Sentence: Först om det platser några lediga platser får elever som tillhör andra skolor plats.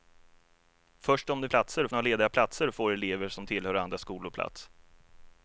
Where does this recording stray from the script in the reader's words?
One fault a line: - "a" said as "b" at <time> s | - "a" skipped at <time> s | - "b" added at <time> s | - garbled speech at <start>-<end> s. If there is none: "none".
none